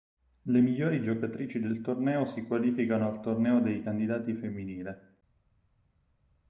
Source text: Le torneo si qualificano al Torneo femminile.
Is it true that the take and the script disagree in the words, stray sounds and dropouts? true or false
true